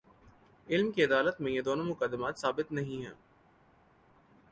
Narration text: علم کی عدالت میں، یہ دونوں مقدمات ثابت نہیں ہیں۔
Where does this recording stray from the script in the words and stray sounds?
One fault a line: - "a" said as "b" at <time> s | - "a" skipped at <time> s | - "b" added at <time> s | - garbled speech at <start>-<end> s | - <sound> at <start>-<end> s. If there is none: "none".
none